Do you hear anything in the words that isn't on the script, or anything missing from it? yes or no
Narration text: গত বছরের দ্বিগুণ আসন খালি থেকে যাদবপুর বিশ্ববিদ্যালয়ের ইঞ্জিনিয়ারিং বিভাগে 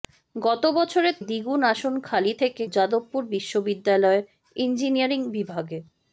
no